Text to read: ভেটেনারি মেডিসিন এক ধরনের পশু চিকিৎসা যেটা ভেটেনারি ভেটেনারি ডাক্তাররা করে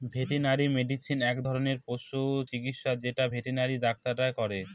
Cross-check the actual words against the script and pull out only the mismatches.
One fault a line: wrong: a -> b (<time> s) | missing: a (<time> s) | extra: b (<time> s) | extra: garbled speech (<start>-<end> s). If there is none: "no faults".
missing: ভেটেনারি (3.8 s)